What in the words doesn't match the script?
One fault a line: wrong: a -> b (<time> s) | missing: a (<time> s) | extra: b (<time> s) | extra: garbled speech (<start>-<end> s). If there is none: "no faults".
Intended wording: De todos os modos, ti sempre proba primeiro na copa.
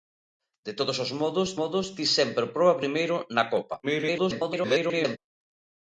extra: modos (1.6 s)
extra: garbled speech (3.8-5.2 s)